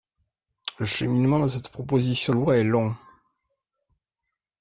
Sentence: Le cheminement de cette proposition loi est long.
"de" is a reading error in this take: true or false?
false